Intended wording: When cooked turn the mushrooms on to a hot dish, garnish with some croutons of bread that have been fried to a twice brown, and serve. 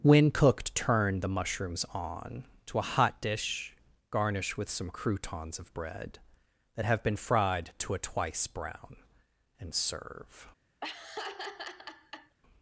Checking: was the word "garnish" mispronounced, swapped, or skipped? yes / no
no